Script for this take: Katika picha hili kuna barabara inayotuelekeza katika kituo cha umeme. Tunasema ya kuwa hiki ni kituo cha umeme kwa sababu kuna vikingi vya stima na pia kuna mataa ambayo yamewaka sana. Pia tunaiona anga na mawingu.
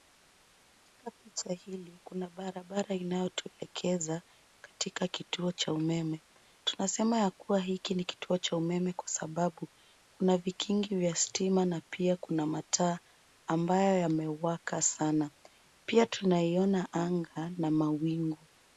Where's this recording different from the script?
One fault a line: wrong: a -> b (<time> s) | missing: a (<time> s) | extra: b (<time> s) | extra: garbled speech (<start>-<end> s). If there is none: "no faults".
no faults